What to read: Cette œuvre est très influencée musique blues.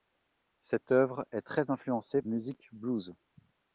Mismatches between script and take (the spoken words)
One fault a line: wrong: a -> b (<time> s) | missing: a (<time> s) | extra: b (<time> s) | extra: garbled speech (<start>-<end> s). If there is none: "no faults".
no faults